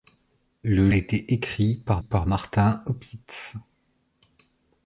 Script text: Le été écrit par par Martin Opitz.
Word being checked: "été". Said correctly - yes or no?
yes